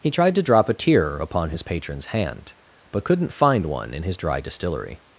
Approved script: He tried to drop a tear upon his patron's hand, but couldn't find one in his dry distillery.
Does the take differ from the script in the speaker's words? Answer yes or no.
no